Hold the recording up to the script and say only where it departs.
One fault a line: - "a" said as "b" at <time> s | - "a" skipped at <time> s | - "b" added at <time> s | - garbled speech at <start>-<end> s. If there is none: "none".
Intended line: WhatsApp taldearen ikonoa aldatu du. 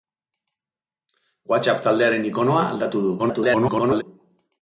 - garbled speech at 3.2-4.0 s